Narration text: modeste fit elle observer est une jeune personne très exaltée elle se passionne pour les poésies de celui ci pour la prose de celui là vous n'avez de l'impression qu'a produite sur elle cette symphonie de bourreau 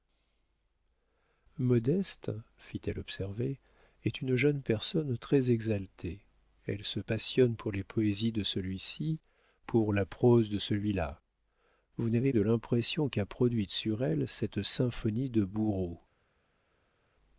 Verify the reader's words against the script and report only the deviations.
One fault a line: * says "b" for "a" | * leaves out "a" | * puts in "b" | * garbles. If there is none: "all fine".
all fine